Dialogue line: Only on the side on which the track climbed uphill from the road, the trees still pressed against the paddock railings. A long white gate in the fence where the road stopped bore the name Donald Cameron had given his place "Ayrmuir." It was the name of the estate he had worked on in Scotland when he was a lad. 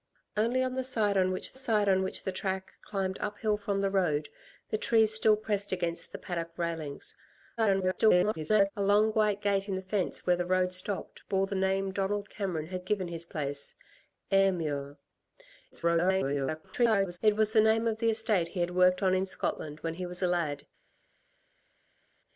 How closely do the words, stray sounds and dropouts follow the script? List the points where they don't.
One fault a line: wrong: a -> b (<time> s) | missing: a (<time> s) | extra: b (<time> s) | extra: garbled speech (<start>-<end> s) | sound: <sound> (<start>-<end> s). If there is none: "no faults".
extra: side on which (1.6 s)
extra: garbled speech (7.6-8.7 s)
extra: garbled speech (15.7-17.2 s)